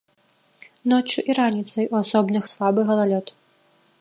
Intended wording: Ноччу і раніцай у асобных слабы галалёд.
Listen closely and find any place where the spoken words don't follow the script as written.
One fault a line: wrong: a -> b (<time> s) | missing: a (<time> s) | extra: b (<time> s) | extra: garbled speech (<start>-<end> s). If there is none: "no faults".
no faults